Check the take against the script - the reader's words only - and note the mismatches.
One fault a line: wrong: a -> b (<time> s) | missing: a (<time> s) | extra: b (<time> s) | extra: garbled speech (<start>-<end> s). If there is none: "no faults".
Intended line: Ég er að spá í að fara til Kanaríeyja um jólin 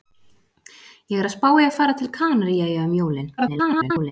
extra: að (1.7 s)
extra: garbled speech (3.4-4.1 s)